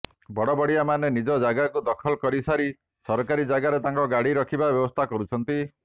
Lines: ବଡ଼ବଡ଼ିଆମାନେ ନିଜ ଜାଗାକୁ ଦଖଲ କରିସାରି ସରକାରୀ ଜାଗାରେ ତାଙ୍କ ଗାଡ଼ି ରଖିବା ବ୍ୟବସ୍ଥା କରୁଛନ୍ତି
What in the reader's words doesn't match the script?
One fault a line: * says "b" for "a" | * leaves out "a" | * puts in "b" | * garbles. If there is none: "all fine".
all fine